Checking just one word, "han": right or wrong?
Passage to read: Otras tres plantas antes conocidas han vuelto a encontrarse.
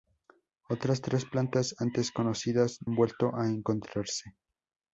right